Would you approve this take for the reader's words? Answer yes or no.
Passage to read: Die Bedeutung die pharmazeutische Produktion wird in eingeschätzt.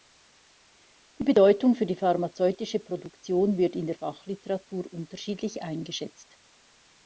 no